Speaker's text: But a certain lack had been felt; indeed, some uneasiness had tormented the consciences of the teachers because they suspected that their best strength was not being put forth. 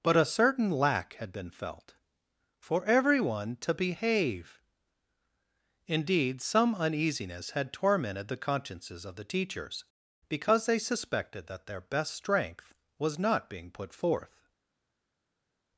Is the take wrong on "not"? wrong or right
right